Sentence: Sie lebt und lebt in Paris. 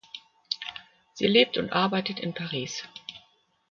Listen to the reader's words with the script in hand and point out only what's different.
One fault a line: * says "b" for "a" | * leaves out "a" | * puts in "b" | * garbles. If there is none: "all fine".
* says "arbeitet" for "lebt"